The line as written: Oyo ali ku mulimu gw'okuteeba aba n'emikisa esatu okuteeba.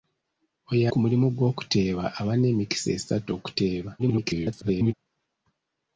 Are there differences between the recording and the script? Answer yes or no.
yes